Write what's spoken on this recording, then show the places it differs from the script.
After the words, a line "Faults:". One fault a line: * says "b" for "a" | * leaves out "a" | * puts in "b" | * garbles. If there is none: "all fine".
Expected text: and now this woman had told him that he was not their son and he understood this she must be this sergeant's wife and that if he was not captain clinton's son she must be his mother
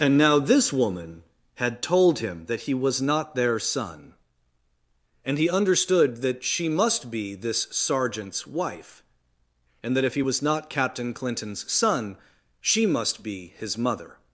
and now this woman had told him that he was not their son and he understood that she must be this sergeant's wife and that if he was not captain clinton's son she must be his mother
Faults:
* says "that" for "this"